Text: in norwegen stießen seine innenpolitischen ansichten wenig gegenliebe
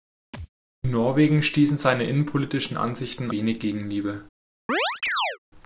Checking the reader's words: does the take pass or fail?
pass